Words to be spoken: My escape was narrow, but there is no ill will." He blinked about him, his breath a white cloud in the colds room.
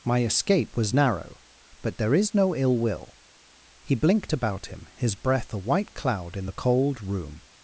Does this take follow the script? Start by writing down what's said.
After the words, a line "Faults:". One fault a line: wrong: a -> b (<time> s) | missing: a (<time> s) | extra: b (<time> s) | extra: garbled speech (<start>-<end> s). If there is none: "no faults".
My escape was narrow, but there is no ill will." He blinked about him, his breath a white cloud in the cold room.
Faults:
wrong: colds -> cold (6.6 s)